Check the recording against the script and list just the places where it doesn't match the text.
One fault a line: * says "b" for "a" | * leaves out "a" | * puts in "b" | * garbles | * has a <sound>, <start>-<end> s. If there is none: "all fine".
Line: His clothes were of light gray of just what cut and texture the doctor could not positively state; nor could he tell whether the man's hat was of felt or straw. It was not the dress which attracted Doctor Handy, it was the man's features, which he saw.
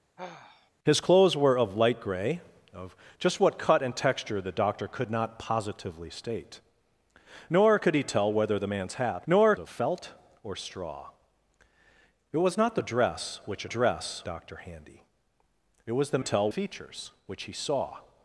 * has a sigh, 0.2-0.7 s
* says "nor" for "was"
* says "dress" for "attracted"
* says "tell" for "man's"